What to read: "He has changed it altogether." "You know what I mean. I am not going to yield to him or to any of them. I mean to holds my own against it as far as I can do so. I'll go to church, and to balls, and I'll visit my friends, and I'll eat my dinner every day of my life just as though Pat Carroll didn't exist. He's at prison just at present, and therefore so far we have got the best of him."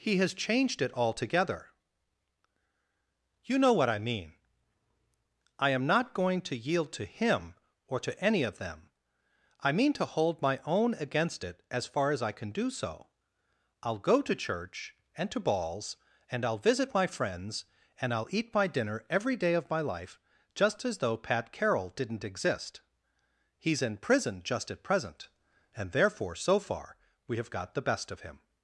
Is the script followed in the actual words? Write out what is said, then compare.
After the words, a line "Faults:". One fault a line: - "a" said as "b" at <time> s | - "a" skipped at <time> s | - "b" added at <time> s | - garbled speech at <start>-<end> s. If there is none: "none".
"He has changed it altogether." "You know what I mean. I am not going to yield to him or to any of them. I mean to hold my own against it as far as I can do so. I'll go to church, and to balls, and I'll visit my friends, and I'll eat my dinner every day of my life just as though Pat Carroll didn't exist. He's in prison just at present, and therefore so far we have got the best of him."
Faults:
- "holds" said as "hold" at 10.1 s
- "at" said as "in" at 23.8 s